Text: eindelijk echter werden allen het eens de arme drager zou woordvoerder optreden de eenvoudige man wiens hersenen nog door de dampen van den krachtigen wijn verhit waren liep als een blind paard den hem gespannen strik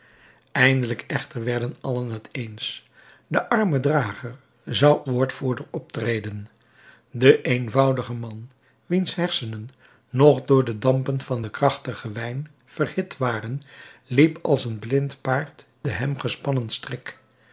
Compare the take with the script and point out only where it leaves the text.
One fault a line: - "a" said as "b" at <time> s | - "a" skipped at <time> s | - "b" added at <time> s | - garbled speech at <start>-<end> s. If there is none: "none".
none